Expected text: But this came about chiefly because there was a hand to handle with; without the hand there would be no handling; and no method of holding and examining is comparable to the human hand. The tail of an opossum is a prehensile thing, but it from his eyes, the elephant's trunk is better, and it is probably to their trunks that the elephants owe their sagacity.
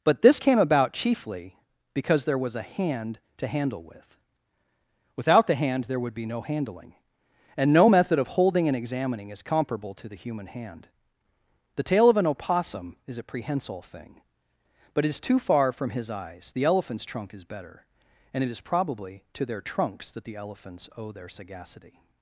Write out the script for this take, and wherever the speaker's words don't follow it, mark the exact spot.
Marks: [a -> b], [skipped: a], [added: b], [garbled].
But this came about chiefly because there was a hand to handle with; without the hand there would be no handling; and no method of holding and examining is comparable to the human hand. The tail of an opossum is a prehensile thing, but it [added: is too far] from his eyes, the elephant's trunk is better, and it is probably to their trunks that the elephants owe their sagacity.